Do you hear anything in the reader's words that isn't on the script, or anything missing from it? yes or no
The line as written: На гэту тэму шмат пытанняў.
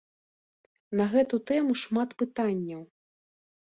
no